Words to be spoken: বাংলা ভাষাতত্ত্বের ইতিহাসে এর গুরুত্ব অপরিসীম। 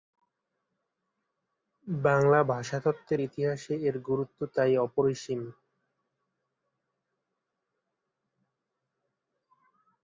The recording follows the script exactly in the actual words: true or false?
false